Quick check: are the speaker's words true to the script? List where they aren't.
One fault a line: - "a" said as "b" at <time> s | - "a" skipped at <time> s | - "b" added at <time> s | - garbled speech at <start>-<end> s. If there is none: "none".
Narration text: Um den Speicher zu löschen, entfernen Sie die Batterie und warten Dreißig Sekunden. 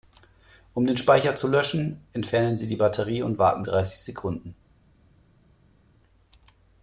none